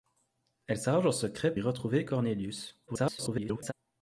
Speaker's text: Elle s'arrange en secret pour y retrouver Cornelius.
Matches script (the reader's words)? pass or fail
fail